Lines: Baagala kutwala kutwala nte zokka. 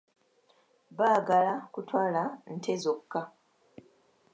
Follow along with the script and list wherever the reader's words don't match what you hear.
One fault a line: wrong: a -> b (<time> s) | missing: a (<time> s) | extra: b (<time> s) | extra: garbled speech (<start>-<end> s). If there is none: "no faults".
missing: kutwala (2.2 s)